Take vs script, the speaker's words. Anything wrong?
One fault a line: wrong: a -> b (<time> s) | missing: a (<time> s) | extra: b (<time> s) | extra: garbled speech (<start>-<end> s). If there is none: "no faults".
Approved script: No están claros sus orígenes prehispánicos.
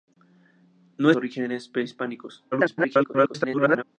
missing: están claros sus (1.1 s)
extra: garbled speech (2.5-3.8 s)